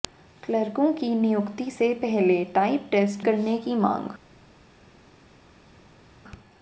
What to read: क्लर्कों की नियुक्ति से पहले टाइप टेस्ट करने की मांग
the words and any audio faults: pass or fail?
pass